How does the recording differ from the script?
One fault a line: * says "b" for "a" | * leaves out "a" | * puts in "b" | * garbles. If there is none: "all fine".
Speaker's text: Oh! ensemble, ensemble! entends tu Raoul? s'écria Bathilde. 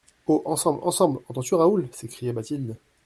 all fine